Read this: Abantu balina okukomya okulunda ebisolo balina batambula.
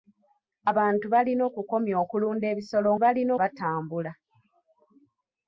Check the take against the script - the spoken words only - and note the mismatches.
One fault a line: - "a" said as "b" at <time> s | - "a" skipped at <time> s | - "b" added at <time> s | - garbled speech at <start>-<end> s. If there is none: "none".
none